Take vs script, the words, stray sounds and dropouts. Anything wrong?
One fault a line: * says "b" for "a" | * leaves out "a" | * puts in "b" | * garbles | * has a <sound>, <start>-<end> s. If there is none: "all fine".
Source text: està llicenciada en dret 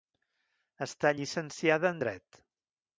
all fine